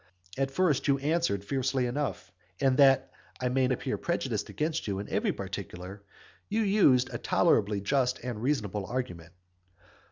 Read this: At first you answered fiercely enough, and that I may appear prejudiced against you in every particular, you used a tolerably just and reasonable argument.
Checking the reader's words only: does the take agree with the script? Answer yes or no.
yes